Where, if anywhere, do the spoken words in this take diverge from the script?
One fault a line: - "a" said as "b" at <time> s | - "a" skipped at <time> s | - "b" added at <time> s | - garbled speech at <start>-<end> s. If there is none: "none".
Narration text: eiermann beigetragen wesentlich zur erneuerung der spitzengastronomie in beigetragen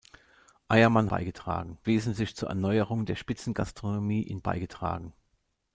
none